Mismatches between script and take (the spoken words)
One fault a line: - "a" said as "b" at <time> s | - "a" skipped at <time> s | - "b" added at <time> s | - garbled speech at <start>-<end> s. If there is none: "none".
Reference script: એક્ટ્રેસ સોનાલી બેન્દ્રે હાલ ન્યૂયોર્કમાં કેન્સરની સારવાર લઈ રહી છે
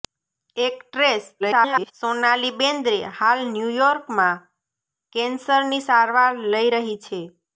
- garbled speech at 1.4-1.9 s